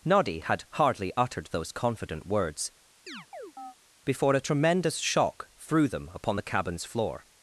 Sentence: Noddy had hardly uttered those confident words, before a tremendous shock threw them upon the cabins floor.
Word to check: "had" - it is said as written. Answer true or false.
true